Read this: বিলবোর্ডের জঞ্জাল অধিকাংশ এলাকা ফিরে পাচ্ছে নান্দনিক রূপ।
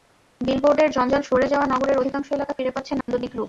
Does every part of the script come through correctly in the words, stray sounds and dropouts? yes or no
no